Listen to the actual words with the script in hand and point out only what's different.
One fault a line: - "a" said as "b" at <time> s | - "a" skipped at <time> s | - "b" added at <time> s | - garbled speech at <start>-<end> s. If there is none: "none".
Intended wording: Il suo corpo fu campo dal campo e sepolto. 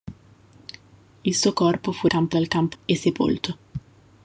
none